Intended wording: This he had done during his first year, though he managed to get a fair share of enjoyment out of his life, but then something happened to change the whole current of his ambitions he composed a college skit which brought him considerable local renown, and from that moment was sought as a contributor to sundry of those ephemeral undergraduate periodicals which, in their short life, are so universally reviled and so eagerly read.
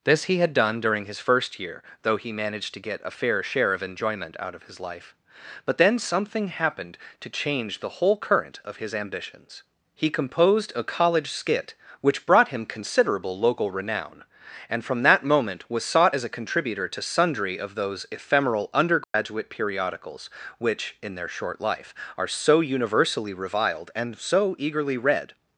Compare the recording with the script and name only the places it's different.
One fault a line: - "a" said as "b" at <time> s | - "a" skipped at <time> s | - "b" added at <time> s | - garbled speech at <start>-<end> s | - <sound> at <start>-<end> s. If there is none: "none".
- dropout at 19.0-19.1 s